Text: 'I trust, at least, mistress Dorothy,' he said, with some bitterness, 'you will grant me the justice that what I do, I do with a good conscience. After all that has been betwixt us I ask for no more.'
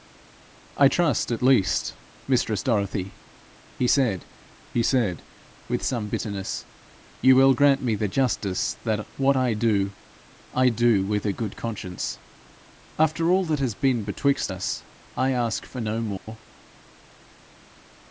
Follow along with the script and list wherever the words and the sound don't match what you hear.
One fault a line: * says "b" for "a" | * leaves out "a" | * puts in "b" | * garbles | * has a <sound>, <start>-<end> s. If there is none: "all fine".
* puts in "he said"
* has a dropout, 16.2-16.3 s